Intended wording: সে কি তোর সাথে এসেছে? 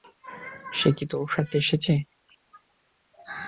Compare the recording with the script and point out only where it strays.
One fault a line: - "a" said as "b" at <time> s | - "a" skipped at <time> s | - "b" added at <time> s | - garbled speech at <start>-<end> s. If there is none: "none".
none